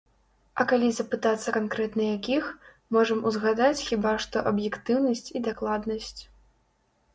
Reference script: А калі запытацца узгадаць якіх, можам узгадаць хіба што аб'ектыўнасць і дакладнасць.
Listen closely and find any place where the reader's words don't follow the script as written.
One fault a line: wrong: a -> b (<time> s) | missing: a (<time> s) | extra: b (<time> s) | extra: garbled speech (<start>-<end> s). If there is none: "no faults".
wrong: узгадаць -> канкрэтна (1.5 s)